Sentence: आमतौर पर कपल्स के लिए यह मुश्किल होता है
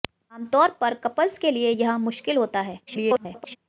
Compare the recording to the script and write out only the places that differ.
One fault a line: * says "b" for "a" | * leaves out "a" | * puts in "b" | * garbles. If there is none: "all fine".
* garbles